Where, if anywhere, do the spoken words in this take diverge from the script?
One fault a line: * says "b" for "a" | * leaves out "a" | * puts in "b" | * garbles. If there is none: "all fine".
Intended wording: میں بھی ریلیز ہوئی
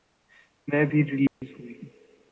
all fine